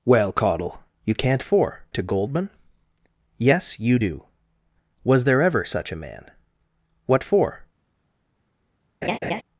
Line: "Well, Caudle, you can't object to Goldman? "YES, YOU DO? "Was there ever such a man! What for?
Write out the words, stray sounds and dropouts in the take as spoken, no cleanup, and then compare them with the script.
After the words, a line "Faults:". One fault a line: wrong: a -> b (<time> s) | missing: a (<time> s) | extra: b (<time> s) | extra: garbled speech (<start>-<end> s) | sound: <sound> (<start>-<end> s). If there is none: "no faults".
"Well, Caudle, you can't for to Goldman? "YES, YOU DO? "Was there ever such a man! What for?
Faults:
wrong: object -> for (1.4 s)
sound: laugh (9.0-9.4 s)